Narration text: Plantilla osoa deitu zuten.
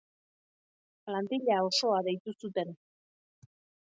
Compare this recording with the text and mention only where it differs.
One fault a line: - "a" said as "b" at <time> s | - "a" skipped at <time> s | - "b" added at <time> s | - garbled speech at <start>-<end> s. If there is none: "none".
none